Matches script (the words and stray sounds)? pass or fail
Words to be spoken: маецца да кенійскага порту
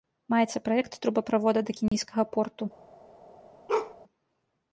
fail